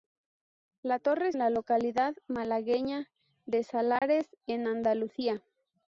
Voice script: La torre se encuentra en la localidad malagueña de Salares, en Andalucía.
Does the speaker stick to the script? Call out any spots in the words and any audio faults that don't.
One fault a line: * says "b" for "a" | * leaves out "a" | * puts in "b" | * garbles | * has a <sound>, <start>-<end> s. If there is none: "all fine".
* leaves out "se encuentra"
* has a dropout, 4.0-4.0 s